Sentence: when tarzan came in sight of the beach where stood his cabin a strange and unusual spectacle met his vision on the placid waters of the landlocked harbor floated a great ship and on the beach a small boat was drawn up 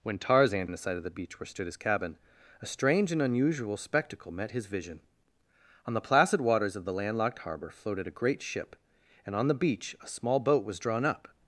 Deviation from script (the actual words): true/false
true